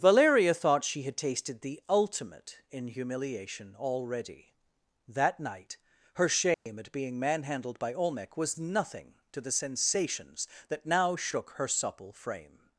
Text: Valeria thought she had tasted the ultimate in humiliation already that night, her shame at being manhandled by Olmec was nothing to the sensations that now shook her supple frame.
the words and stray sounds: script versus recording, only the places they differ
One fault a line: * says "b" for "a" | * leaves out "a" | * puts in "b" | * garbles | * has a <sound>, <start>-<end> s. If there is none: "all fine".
* has a dropout, 6.5-6.7 s